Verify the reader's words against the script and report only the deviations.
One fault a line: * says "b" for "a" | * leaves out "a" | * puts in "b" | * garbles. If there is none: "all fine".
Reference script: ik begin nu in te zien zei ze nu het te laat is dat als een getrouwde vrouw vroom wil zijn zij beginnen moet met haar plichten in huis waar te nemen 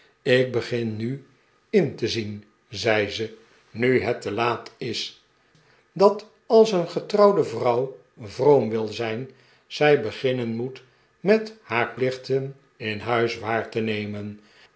all fine